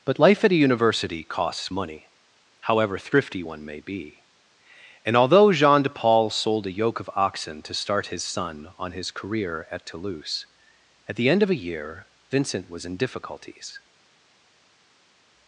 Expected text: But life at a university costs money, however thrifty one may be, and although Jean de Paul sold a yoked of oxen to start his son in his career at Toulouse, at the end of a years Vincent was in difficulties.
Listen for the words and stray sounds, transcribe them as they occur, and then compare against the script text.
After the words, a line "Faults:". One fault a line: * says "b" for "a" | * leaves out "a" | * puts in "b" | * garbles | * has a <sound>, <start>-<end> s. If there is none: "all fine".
But life at a university costs money, however thrifty one may be, and although Jean de Paul sold a yoke of oxen to start his son on his career at Toulouse, at the end of a year Vincent was in difficulties.
Faults:
* says "yoke" for "yoked"
* says "on" for "in"
* says "year" for "years"